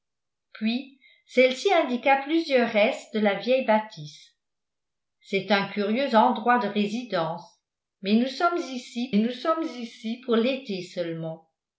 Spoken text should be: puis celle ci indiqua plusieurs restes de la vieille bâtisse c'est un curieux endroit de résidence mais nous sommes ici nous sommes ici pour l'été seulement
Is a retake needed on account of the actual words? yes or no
no